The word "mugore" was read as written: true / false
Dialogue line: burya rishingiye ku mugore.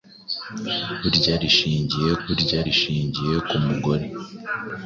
true